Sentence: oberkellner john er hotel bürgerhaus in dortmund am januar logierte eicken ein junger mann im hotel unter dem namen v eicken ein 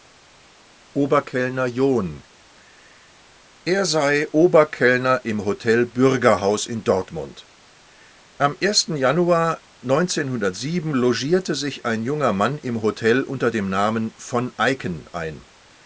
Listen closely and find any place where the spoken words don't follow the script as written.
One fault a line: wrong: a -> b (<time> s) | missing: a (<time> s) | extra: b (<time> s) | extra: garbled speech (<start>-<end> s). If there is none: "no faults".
extra: sei oberkellner im (3.9 s)
wrong: eicken -> sich (11.5 s)